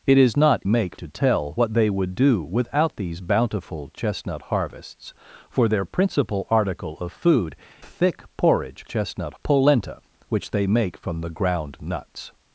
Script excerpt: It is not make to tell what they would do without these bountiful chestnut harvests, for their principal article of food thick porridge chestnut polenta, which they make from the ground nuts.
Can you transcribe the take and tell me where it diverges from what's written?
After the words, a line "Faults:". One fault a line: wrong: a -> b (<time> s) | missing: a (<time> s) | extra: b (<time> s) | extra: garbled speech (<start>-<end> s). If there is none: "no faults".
It is not make to tell what they would do without these bountiful chestnut harvests, for their principal article of food thick porridge chestnut polenta, which they make from the ground nuts.
Faults:
no faults